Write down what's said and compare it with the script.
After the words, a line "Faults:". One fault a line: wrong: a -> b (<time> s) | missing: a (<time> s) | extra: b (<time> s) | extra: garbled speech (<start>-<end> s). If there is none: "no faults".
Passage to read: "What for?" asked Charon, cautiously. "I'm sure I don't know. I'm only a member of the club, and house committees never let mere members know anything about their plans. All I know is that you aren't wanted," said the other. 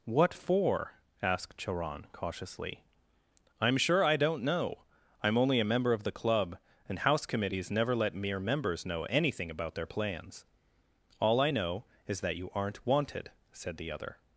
"What for?" asked Charon, cautiously. "I'm sure I don't know. I'm only a member of the club, and house committees never let mere members know anything about their plans. All I know is that you aren't wanted," said the other.
Faults:
no faults